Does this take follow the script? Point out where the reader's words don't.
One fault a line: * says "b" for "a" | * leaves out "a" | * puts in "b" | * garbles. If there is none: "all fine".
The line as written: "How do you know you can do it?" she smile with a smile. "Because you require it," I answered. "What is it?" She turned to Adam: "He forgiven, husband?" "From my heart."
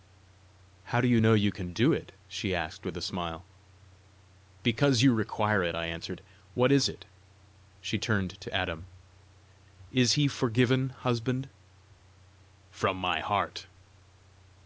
* says "asked" for "smile"
* puts in "Is"